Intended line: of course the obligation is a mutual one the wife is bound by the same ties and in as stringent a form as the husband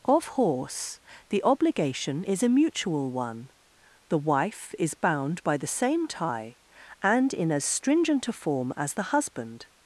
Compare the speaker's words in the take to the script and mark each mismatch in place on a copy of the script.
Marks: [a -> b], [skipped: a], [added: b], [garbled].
of [course -> horse] the obligation is a mutual one the wife is bound by the same [ties -> tie] and in as stringent a form as the husband